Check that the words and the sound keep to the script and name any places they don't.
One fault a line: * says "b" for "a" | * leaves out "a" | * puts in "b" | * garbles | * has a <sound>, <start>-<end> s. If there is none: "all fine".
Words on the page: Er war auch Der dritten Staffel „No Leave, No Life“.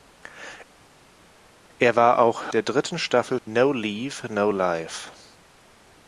all fine